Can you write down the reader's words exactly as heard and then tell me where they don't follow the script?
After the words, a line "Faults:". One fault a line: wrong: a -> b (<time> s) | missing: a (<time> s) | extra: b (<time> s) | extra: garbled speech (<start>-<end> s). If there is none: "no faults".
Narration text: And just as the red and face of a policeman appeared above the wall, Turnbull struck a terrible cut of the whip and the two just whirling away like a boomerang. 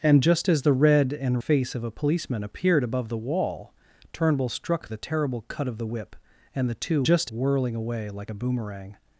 And just as the red and face of a policeman appeared above the wall, Turnbull struck a terrible cut of the whip and the two just whirling away like a boomerang.
Faults:
no faults